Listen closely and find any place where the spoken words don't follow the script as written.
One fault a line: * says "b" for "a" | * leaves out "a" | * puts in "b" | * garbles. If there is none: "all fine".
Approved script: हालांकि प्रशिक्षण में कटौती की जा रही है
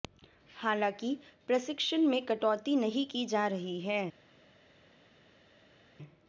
* puts in "नहीं"